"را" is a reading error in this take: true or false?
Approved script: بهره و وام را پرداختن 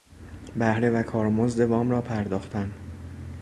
false